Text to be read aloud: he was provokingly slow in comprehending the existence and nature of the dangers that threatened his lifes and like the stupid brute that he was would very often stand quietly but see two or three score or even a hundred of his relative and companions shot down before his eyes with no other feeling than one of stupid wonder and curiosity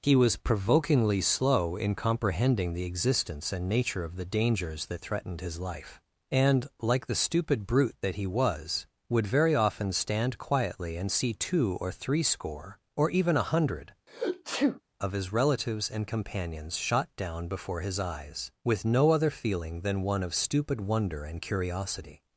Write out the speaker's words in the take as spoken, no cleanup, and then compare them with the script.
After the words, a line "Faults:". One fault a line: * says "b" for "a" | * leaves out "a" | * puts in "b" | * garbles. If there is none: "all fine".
he was provokingly slow in comprehending the existence and nature of the dangers that threatened his life and like the stupid brute that he was would very often stand quietly and see two or three score or even a hundred of his relatives and companions shot down before his eyes with no other feeling than one of stupid wonder and curiosity
Faults:
* says "life" for "lifes"
* says "and" for "but"
* says "relatives" for "relative"